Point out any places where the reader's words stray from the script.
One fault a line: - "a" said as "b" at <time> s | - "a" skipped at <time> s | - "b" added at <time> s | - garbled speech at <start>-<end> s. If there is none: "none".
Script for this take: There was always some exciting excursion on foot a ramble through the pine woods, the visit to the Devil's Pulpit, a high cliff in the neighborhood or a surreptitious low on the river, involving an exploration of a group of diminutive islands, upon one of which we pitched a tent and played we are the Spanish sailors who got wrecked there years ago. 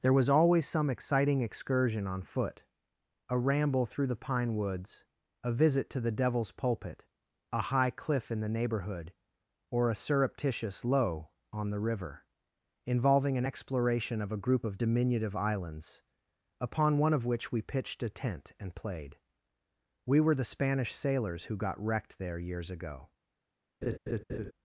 - "the" said as "a" at 5.4 s
- "are" said as "were" at 20.2 s